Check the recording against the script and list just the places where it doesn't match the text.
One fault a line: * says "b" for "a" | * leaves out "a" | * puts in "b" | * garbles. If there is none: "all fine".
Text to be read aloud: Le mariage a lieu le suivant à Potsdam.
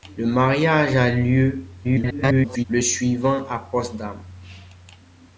* garbles